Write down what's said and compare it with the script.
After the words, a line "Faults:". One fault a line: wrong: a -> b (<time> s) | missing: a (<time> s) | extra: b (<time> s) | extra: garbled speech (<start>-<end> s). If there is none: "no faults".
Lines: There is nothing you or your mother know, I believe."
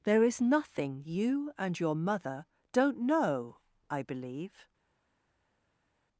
There is nothing you and your mother don't know, I believe."
Faults:
wrong: or -> and (1.6 s)
extra: don't (2.7 s)